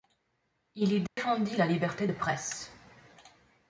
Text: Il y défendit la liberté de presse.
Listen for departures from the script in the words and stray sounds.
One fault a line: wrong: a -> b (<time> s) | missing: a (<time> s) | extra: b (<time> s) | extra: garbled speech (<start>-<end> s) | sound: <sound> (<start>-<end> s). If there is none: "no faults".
sound: dropout (1.1-1.2 s)